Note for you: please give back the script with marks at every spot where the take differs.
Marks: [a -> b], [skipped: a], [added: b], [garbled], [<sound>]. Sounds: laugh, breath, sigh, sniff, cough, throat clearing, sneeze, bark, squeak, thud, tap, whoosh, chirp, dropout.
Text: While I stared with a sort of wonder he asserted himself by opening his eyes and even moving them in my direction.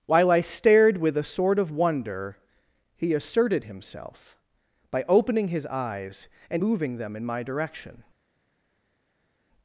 While I stared with a sort of wonder he asserted himself by opening his eyes and [skipped: even] moving them in my direction.